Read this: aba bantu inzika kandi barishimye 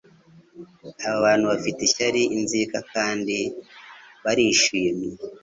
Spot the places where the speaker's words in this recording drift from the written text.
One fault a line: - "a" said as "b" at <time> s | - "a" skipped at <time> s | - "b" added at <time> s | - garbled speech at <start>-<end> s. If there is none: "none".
- "bafite ishyari" added at 1.5 s